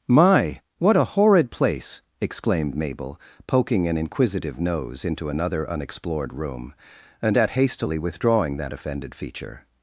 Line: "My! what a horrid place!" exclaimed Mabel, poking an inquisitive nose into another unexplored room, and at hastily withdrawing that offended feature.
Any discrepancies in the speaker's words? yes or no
no